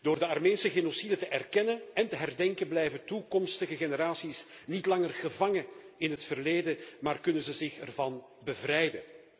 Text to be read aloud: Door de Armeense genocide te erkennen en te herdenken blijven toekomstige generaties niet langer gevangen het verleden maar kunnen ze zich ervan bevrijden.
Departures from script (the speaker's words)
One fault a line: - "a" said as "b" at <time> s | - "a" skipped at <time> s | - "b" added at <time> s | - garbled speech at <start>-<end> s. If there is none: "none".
- "in" added at 6.0 s